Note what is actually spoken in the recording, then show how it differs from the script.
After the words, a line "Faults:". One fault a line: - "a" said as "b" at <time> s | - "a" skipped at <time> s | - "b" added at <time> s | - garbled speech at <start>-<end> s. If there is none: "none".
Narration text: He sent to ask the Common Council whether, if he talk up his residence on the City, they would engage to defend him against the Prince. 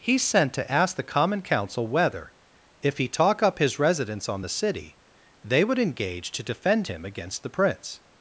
He sent to ask the Common Council whether, if he talk up his residence on the City, they would engage to defend him against the Prince.
Faults:
none